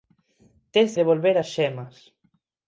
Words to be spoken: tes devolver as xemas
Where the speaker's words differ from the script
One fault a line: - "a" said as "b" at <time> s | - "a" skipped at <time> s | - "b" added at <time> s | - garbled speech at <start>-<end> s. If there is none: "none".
none